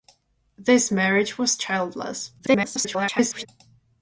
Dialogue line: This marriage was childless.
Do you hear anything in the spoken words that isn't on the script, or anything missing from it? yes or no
yes